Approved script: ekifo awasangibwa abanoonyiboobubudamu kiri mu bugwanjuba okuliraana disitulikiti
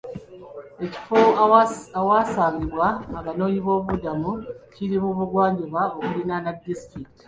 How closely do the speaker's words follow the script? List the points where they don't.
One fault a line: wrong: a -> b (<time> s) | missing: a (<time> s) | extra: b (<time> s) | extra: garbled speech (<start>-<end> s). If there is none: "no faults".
no faults